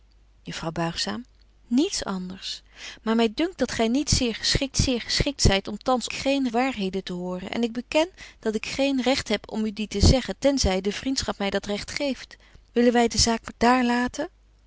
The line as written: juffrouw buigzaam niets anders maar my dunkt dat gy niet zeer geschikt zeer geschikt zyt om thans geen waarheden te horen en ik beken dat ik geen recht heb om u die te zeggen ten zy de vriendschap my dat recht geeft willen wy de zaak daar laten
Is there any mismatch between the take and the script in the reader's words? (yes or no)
no